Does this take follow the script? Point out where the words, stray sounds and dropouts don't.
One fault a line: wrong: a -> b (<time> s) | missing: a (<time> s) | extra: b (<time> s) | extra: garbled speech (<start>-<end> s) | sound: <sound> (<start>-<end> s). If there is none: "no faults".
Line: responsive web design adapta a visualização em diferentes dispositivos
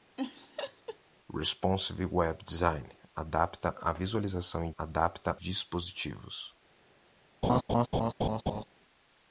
sound: laugh (0.2-1.0 s)
wrong: diferentes -> adapta (4.8 s)
sound: laugh (7.4-8.6 s)